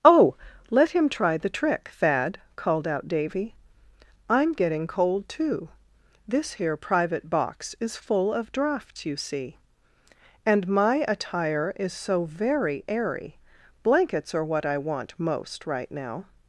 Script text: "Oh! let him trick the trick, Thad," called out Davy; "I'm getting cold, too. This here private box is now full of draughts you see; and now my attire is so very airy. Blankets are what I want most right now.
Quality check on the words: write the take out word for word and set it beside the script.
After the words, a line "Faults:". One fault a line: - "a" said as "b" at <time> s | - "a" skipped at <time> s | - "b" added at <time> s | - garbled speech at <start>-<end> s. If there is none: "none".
"Oh! let him try the trick, Thad," called out Davy; "I'm getting cold, too. This here private box is full of draughts you see; and my attire is so very airy. Blankets are what I want most right now.
Faults:
- "trick" said as "try" at 1.1 s
- "now" skipped at 8.0 s
- "now" skipped at 10.7 s